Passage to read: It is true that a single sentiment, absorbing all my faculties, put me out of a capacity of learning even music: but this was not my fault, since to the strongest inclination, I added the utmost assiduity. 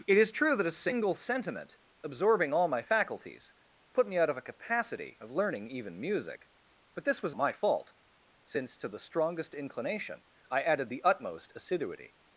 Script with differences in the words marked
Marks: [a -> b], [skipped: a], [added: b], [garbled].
It is true that a single sentiment, absorbing all my faculties, put me out of a capacity of learning even music: but this was [skipped: not] my fault, since to the strongest inclination, I added the utmost assiduity.